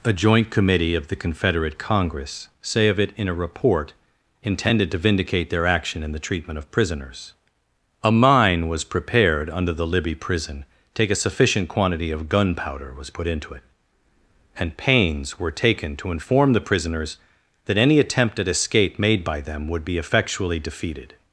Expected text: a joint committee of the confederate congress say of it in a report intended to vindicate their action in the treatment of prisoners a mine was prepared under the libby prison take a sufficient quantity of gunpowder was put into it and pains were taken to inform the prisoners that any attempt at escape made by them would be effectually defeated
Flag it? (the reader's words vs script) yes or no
no